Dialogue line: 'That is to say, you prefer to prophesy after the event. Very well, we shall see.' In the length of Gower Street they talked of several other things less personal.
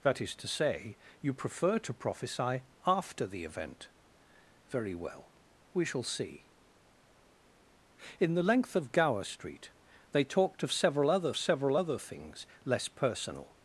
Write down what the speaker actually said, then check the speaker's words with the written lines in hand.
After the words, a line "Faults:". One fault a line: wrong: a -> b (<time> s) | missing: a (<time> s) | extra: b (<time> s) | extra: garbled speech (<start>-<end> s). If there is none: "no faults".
'That is to say, you prefer to prophesy after the event. Very well, we shall see.' In the length of Gower Street they talked of several other several other things less personal.
Faults:
extra: several other (11.4 s)